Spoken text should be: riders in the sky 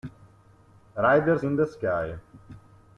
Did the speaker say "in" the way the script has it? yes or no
yes